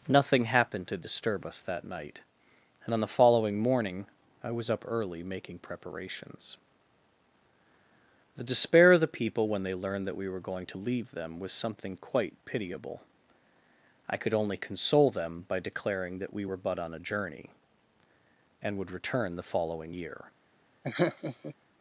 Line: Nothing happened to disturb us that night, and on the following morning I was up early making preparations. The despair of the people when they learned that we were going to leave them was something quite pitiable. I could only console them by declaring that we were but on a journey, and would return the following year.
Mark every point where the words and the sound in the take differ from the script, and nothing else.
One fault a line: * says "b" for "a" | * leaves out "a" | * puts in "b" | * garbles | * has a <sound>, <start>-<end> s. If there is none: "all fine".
* has a laugh, 20.8-21.6 s